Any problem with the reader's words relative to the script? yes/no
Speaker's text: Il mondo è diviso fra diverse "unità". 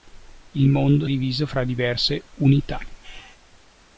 no